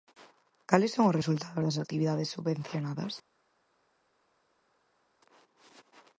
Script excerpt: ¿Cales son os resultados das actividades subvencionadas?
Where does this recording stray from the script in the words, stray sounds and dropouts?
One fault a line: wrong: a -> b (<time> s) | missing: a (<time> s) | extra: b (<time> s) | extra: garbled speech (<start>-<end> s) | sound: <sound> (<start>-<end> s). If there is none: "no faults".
no faults